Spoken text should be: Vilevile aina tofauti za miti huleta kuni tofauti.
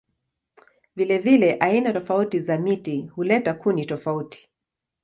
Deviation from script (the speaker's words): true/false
false